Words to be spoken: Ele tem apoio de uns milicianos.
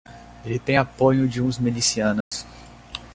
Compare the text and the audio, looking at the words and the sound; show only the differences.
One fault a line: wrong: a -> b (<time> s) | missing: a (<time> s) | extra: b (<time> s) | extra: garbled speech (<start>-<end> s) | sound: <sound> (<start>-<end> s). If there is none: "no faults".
sound: dropout (2.2-2.3 s)